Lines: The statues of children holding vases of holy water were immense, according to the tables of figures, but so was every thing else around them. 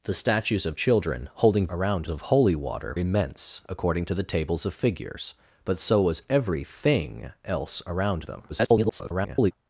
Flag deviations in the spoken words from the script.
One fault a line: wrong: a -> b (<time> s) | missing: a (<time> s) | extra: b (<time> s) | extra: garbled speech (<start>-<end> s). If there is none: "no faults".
wrong: vases -> around (1.7 s)
missing: were (2.9 s)
extra: garbled speech (8.5-9.5 s)